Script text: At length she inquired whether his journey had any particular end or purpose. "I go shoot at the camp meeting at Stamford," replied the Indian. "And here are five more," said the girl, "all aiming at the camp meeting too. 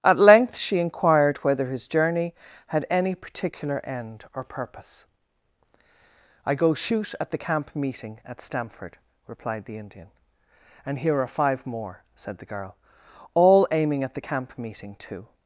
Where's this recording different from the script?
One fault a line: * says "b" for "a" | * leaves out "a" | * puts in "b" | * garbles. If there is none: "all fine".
all fine